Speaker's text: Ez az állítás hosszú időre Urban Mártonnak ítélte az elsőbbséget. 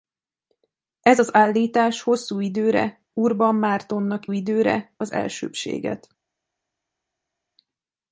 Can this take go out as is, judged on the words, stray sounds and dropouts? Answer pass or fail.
fail